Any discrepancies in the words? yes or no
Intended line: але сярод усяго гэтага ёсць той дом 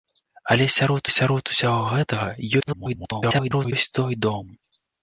yes